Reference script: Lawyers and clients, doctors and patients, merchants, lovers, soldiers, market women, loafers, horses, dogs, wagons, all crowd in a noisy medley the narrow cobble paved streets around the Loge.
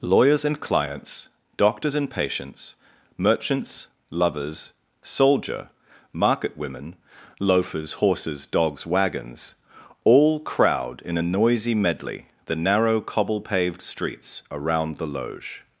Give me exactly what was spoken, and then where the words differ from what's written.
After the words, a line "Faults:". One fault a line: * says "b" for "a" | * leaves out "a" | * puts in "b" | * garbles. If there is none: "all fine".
Lawyers and clients, doctors and patients, merchants, lovers, soldier, market women, loafers, horses, dogs, wagons, all crowd in a noisy medley the narrow cobble paved streets around the Loge.
Faults:
* says "soldier" for "soldiers"